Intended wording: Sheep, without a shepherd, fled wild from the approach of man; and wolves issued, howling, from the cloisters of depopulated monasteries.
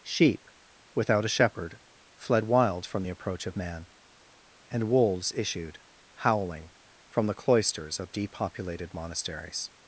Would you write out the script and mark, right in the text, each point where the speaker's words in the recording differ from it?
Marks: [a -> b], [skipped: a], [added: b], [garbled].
Sheep, without a shepherd, fled wild from the approach of man; and wolves issued, howling, from the cloisters of depopulated monasteries.